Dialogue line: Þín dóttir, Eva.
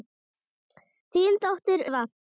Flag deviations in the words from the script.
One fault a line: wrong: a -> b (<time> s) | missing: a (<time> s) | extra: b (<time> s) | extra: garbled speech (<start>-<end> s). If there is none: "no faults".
no faults